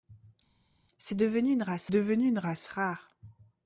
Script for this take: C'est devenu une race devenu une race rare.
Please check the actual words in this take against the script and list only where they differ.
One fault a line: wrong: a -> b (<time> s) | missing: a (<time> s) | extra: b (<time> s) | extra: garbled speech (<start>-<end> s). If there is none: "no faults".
no faults